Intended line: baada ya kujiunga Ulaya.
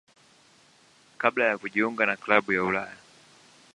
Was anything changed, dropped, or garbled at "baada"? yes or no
yes